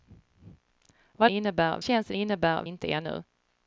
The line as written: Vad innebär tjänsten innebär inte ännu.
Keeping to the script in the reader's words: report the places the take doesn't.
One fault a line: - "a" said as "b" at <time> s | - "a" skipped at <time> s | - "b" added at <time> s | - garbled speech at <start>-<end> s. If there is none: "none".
none